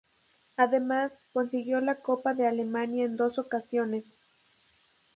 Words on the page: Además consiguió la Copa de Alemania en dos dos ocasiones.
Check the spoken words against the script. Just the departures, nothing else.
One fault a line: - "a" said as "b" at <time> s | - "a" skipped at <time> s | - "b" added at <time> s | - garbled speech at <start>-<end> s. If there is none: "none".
- "dos" skipped at 3.4 s